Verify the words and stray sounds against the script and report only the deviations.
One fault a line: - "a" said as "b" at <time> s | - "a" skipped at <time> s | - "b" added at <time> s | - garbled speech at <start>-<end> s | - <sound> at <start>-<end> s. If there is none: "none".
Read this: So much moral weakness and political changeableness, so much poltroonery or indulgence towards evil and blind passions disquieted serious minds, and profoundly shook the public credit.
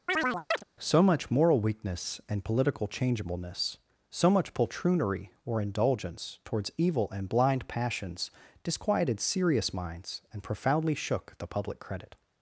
- chirp at 0.1-0.6 s